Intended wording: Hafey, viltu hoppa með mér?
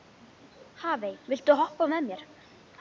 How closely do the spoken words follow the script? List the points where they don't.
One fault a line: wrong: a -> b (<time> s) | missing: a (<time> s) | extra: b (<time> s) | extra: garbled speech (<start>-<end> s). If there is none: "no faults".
no faults